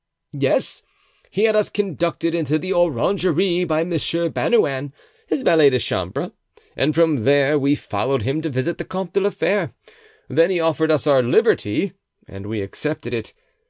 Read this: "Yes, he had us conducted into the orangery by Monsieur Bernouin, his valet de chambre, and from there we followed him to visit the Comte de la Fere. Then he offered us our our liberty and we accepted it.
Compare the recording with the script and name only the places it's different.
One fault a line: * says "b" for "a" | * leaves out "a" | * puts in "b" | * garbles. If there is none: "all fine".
* leaves out "our"